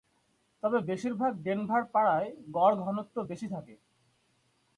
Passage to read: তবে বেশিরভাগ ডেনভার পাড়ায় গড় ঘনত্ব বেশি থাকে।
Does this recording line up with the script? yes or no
yes